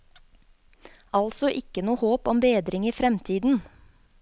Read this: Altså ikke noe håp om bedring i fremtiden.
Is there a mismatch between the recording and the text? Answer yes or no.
no